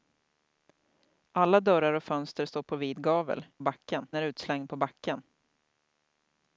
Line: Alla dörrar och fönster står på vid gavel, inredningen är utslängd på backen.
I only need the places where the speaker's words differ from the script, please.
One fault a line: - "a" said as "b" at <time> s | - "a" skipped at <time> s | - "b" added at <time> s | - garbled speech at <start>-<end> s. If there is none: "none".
- "inredningen" said as "backen" at 3.6 s